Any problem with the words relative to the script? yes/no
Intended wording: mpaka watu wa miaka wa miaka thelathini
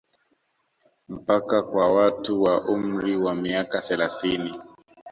yes